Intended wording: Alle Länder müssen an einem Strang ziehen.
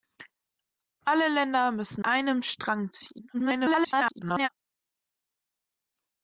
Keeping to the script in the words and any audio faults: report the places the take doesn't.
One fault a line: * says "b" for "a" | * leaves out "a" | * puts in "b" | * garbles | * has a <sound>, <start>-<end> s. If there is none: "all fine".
* leaves out "an"
* garbles